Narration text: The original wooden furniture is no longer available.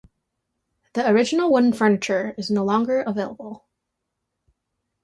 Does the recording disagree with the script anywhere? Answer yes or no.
no